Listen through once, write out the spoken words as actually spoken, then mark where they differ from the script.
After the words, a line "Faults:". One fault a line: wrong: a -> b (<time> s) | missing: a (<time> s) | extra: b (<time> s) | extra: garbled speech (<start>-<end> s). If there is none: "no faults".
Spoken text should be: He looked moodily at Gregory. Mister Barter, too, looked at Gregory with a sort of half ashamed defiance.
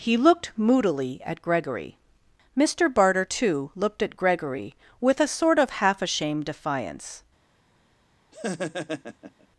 He looked moodily at Gregory. Mister Barter, too, looked at Gregory with a sort of half ashamed defiance.
Faults:
no faults